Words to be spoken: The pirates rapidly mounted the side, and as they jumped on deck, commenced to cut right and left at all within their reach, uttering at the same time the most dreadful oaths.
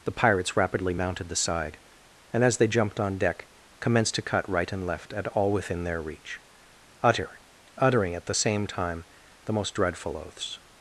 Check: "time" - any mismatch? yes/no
no